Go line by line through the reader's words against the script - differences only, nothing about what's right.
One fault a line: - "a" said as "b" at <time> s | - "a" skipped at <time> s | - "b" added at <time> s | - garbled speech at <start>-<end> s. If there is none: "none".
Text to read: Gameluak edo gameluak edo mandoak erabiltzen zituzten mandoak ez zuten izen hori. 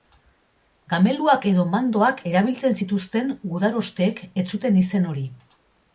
- "gameluak edo" skipped at 1.6 s
- "mandoak" said as "gudarosteek" at 3.6 s